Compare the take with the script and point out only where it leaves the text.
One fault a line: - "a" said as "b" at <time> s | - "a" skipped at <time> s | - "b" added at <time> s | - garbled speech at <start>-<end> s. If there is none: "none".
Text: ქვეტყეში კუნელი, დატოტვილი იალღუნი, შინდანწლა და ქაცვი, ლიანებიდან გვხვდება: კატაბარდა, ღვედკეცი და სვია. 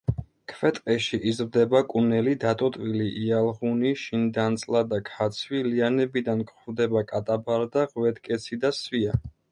- "იზრდება" added at 1.3 s